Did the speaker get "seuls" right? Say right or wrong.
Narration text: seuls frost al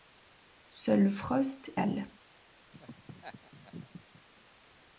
right